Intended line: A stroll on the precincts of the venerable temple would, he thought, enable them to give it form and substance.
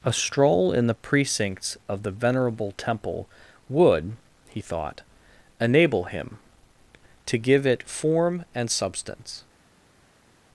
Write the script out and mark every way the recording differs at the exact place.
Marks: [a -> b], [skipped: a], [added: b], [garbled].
A stroll [on -> in] the precincts of the venerable temple would, he thought, enable [them -> him] to give it form and substance.